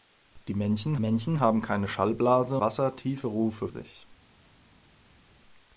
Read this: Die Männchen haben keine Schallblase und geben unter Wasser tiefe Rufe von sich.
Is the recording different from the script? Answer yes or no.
yes